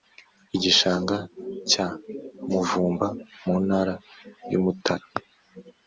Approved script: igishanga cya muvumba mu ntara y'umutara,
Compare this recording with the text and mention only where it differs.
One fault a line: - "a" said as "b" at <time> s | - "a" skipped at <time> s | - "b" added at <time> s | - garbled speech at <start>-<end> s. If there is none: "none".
none